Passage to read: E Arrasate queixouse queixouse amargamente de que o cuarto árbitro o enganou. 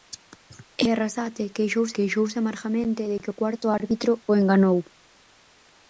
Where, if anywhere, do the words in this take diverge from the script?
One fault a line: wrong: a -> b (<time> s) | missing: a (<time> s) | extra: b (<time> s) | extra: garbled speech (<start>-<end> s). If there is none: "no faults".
no faults